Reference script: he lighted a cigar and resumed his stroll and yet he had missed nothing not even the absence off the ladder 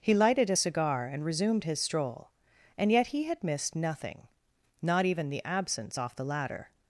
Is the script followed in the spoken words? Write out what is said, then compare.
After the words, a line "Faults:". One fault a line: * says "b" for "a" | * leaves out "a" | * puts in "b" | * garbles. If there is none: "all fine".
he lighted a cigar and resumed his stroll and yet he had missed nothing not even the absence off the ladder
Faults:
all fine